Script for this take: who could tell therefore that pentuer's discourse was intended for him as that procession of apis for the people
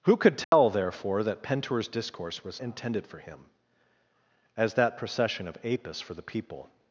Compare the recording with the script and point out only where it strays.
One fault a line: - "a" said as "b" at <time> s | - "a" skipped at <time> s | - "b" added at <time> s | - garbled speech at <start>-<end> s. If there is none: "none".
none